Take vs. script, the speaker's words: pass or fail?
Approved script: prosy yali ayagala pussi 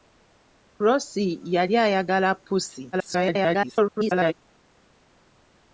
fail